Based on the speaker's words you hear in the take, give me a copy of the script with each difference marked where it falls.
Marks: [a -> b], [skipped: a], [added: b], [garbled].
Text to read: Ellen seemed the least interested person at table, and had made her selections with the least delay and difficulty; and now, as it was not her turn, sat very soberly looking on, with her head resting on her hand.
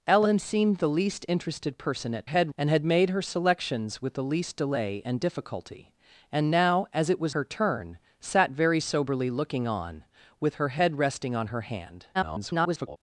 Ellen seemed the least interested person at [table, -> head] and had made her selections with the least delay and difficulty; and now, as it was [skipped: not] her turn, sat very soberly looking on, with her head resting on her hand. [garbled]